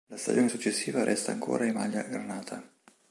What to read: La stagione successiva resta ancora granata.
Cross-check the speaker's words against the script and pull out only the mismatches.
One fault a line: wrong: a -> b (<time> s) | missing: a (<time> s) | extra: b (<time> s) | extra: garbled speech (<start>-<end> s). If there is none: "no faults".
extra: in maglia (1.6 s)